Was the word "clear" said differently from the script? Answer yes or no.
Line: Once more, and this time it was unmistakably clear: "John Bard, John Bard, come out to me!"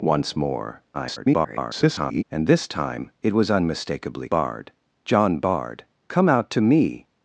yes